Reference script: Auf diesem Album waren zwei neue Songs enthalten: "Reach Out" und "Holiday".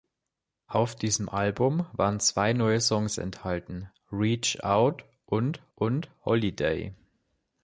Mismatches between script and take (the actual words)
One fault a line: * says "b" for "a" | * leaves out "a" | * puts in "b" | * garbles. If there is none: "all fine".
* puts in "und"